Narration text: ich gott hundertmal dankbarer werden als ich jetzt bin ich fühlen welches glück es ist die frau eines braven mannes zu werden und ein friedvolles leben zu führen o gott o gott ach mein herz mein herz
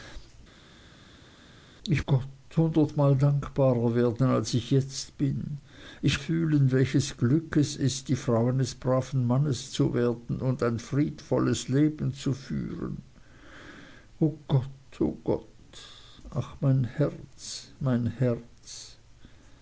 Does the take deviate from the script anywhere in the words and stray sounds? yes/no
no